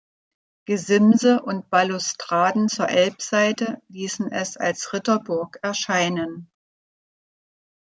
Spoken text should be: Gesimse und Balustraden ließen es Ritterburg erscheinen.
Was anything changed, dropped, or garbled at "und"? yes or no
no